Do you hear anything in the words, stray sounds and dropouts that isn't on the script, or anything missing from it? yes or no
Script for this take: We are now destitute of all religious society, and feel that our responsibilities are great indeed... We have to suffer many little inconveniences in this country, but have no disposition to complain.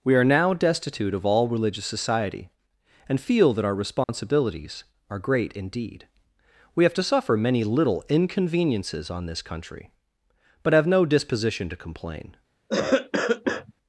yes